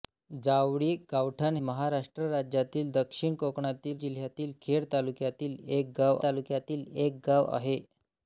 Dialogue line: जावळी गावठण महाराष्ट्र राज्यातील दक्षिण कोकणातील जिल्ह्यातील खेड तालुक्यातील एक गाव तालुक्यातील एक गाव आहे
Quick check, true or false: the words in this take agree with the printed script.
true